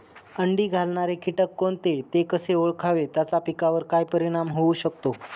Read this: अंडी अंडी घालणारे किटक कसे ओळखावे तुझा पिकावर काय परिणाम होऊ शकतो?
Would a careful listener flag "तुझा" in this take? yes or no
yes